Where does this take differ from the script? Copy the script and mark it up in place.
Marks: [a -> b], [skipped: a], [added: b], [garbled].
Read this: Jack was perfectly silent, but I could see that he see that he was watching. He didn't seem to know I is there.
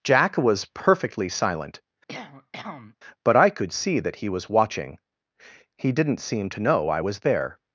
Jack was perfectly silent, but I could see that he [skipped: see that he] was watching. He didn't seem to know I [is -> was] there.